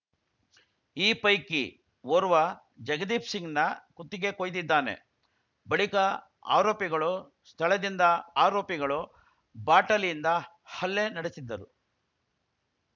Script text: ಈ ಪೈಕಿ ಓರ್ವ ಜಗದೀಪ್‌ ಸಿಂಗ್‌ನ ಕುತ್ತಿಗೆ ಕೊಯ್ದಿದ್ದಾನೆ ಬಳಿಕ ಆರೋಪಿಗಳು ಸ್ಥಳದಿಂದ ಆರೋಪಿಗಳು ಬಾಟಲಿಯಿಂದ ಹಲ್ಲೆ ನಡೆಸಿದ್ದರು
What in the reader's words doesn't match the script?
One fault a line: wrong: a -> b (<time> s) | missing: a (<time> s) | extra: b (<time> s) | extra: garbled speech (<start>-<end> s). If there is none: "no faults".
no faults